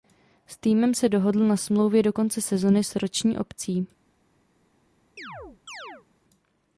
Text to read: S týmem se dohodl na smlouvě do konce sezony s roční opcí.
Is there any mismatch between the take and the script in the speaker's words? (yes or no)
no